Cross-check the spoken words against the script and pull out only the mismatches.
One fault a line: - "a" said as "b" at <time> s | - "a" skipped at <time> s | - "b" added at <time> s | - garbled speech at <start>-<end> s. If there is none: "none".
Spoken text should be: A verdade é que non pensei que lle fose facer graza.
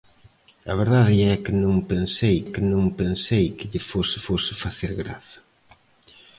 - "non pensei que" added at 2.7 s
- "fose" added at 4.3 s